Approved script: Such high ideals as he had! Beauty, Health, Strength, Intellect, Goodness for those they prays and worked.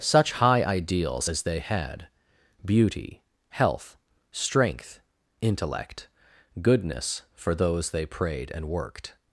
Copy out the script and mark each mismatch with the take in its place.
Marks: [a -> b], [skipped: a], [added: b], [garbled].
Such high ideals as [he -> they] had! Beauty, Health, Strength, Intellect, Goodness for those they [prays -> prayed] and worked.